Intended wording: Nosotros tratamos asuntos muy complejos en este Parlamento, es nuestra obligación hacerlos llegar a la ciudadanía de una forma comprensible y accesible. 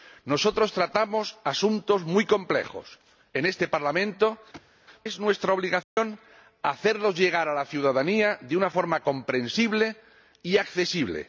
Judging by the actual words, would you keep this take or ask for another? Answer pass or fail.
pass